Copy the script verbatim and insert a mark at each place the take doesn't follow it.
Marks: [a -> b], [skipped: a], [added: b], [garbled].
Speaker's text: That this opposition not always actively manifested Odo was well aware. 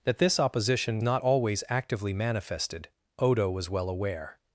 That this opposition not always actively manifested Odo was well aware.